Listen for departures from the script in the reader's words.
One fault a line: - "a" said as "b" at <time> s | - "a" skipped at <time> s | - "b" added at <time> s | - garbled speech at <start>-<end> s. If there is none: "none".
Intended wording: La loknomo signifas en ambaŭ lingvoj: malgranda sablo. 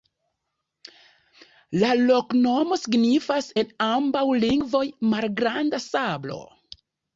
none